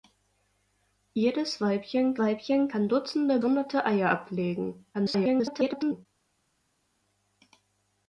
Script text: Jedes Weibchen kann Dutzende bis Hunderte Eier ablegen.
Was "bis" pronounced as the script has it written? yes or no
no